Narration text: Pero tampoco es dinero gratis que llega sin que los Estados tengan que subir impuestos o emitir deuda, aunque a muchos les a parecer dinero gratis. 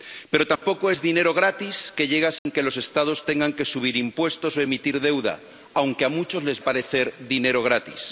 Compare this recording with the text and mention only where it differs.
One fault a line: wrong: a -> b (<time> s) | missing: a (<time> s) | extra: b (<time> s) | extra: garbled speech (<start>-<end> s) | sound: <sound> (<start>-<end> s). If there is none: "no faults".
sound: dropout (0.6-0.6 s)
sound: dropout (2.4-2.5 s)